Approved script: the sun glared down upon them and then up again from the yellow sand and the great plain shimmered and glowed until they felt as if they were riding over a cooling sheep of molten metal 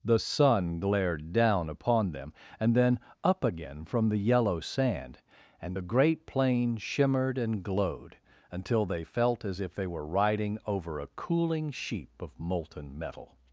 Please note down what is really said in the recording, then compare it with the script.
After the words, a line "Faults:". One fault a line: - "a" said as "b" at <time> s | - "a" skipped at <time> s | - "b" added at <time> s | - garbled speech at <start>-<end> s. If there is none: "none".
the sun glared down upon them and then up again from the yellow sand and the great plain shimmered and glowed until they felt as if they were riding over a cooling sheep of molten metal
Faults:
none